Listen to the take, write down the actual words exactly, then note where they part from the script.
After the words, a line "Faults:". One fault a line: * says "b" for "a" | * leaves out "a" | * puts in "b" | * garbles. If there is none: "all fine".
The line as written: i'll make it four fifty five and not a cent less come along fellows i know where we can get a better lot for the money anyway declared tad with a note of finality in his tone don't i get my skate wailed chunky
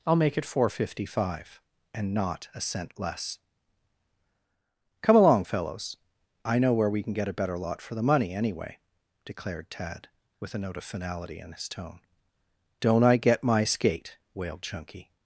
i'll make it four fifty five and not a cent less come along fellows i know where we can get a better lot for the money anyway declared tad with a note of finality in his tone don't i get my skate wailed chunky
Faults:
all fine